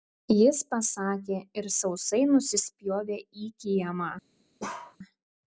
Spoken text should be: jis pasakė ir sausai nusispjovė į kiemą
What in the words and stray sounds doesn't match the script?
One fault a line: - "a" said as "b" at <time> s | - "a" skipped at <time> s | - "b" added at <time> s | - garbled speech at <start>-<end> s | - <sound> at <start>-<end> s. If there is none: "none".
- bark at 4.6-5.0 s